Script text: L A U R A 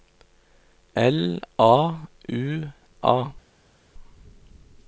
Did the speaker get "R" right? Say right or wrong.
wrong